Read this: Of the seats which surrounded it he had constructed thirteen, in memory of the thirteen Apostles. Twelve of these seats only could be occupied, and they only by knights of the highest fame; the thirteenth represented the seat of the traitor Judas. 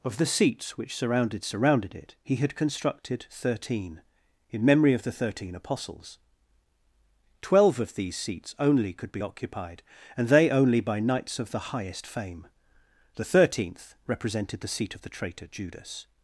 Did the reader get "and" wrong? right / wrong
right